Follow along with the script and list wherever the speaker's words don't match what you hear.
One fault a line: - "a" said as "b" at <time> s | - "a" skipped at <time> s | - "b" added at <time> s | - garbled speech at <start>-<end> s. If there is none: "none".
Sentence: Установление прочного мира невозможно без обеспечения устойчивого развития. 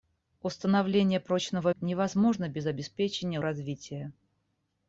- "мира" skipped at 1.7 s
- "устойчивого" skipped at 3.4 s